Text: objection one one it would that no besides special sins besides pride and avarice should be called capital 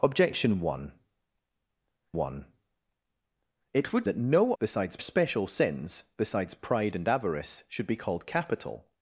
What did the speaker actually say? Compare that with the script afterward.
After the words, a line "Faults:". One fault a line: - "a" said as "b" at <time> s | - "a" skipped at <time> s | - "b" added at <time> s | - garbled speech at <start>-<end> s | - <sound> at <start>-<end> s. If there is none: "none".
objection one one it would that no besides special sins besides pride and avarice should be called capital
Faults:
none